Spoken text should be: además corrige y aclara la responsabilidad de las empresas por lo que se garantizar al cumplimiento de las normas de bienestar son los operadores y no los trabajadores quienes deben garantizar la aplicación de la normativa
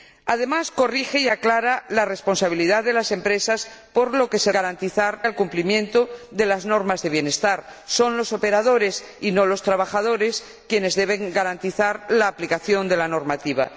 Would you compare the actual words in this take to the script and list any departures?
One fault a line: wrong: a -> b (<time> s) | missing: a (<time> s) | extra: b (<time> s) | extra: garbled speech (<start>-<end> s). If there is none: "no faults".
no faults